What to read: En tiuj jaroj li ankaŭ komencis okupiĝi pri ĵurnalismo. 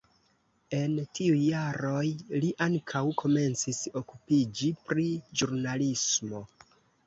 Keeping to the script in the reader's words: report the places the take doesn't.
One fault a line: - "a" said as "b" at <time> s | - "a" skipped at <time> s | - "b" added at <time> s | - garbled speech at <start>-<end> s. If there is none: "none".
none